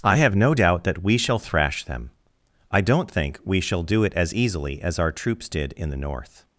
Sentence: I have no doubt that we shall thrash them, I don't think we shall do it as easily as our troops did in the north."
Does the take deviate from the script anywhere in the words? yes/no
no